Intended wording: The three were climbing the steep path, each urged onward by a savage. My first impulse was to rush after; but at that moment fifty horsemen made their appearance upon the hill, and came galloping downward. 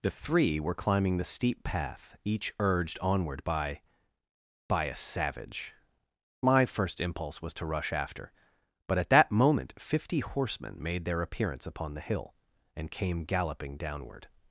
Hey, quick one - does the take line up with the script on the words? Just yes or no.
no